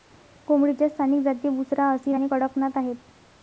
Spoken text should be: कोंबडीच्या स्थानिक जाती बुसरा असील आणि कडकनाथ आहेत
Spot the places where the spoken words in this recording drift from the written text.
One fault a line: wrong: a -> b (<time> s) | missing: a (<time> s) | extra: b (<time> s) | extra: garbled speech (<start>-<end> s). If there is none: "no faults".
no faults